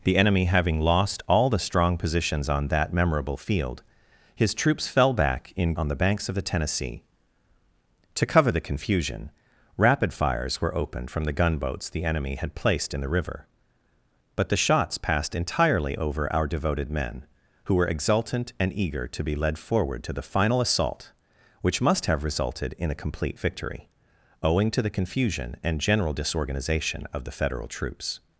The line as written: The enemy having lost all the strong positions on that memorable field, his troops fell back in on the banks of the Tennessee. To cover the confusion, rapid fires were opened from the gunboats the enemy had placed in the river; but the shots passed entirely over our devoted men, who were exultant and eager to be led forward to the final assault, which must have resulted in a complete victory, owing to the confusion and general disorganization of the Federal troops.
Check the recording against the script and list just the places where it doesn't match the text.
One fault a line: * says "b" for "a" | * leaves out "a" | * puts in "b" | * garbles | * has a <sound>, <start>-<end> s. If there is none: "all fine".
all fine